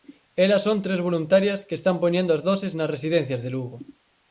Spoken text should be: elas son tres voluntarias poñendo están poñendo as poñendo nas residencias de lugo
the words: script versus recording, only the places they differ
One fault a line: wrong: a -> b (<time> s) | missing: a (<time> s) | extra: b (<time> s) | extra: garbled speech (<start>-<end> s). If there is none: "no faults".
wrong: poñendo -> que (1.7 s)
wrong: poñendo -> doses (2.5 s)